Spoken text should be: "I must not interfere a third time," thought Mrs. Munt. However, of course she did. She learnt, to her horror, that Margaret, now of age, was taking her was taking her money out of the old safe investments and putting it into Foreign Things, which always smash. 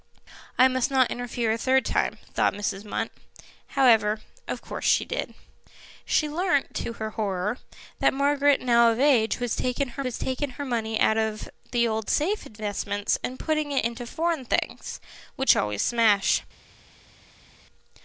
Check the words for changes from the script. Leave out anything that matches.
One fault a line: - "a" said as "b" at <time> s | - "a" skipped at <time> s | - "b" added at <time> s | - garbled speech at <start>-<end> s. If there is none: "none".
none